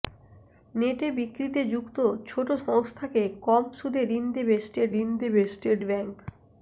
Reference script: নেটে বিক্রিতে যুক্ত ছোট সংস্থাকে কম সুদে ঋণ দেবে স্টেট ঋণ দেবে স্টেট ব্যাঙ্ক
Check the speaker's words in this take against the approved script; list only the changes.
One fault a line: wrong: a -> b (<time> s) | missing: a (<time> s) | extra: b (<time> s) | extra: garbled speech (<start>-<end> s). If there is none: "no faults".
no faults